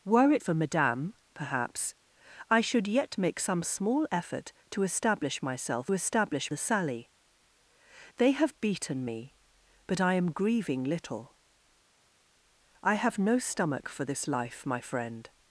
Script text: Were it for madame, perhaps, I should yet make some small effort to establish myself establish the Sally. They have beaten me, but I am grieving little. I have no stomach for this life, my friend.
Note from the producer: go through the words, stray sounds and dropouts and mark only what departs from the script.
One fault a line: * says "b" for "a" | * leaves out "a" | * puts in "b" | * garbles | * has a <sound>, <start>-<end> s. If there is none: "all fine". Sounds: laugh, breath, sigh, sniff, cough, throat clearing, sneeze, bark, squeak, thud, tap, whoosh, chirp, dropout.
all fine